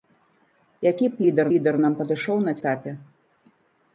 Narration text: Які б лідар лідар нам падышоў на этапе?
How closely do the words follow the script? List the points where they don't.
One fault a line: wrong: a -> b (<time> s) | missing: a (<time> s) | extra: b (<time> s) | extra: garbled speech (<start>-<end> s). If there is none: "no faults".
no faults